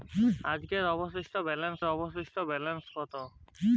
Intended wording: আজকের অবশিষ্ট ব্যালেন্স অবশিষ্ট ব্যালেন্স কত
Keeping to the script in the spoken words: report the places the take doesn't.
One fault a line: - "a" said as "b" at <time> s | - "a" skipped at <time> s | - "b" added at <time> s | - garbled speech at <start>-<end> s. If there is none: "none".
none